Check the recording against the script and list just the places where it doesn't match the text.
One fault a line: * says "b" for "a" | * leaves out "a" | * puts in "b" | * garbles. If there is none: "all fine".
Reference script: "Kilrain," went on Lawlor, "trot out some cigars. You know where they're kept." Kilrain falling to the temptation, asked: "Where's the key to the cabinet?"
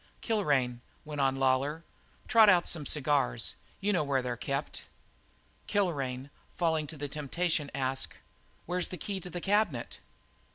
all fine